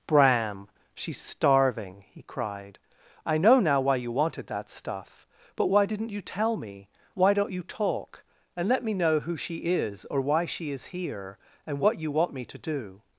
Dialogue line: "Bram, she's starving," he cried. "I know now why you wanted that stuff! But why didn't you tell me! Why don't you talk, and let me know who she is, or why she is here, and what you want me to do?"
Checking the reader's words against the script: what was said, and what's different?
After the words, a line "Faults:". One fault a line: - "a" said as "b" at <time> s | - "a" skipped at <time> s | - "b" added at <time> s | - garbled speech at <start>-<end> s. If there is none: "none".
"Bram, she's starving," he cried. "I know now why you wanted that stuff! But why didn't you tell me! Why don't you talk, and let me know who she is, or why she is here, and what you want me to do?"
Faults:
none